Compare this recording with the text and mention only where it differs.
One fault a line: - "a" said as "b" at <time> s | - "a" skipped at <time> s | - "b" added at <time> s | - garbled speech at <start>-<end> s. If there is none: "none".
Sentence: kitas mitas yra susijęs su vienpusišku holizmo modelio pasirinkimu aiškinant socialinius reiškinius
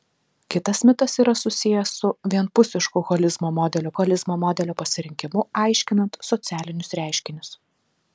- "holizmo modelio" added at 4.0 s